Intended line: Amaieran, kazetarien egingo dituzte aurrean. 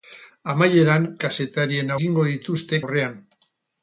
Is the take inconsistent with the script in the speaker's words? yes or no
no